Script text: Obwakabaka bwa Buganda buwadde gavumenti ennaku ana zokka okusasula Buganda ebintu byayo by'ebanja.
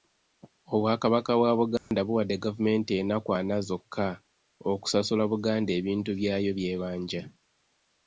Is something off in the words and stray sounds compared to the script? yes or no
yes